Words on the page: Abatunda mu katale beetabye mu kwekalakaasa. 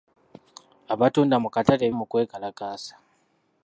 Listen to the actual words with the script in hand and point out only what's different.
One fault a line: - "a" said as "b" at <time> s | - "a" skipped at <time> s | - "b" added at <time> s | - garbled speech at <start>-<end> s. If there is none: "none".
- "beetabye" skipped at 1.8 s